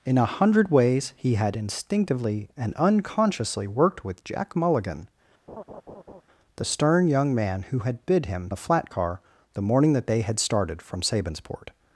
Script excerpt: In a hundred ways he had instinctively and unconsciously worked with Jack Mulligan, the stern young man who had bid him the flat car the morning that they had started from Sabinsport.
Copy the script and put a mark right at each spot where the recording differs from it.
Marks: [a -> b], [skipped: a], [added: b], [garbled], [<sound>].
In a hundred ways he had instinctively and unconsciously worked with Jack Mulligan, [laugh] the stern young man who had bid him the flat car the morning that they had started from Sabinsport.